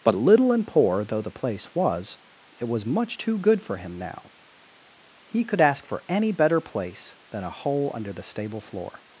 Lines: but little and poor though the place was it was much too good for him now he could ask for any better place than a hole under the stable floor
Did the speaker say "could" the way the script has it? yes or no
yes